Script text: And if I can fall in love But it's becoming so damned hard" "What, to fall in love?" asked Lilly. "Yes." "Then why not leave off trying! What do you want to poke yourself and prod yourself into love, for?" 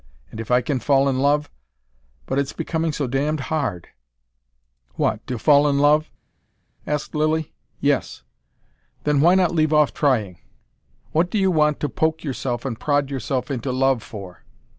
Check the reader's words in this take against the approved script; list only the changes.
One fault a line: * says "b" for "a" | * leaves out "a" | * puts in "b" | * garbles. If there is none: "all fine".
all fine